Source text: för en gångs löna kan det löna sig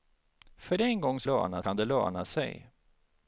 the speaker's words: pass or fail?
pass